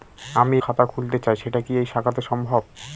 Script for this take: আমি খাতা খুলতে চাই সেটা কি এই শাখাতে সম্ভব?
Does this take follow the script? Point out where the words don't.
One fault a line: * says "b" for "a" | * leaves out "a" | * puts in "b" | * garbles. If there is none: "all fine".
all fine